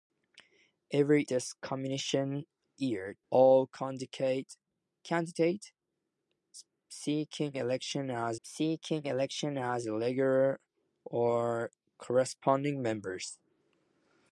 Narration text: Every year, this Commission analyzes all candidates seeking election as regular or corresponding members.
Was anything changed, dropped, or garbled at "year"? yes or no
yes